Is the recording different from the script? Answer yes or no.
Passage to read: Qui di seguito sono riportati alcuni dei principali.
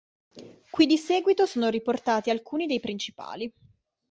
no